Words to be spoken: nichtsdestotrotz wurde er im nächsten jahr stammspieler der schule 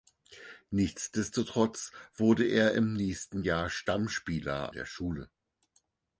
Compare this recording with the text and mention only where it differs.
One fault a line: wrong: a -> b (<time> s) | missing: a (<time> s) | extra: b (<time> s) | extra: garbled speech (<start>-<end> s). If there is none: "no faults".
no faults